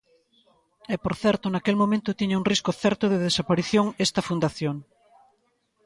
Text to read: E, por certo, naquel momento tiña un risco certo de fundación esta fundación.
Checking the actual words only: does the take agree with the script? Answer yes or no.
no